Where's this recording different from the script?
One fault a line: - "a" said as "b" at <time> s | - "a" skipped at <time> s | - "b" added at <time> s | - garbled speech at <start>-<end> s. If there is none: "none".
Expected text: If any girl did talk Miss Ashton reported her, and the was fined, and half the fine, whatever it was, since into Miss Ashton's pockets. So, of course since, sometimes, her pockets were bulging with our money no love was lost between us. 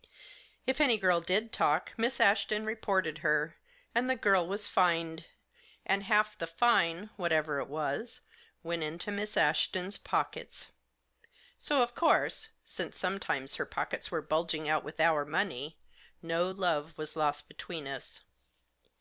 - "girl" added at 4.2 s
- "since" said as "went" at 8.6 s
- "out" added at 14.7 s